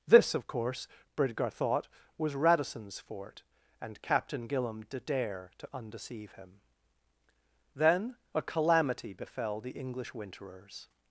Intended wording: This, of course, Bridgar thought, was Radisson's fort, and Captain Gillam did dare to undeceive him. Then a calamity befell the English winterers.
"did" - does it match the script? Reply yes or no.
yes